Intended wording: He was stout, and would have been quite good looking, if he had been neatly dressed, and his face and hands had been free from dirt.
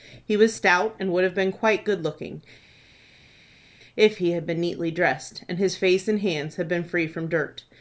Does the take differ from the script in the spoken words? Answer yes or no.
no